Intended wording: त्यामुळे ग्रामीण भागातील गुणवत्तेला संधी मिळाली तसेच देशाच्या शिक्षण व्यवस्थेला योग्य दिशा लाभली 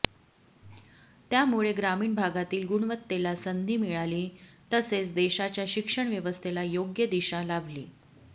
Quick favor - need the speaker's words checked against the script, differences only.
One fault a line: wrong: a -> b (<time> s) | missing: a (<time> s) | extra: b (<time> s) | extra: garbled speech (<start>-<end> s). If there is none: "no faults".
no faults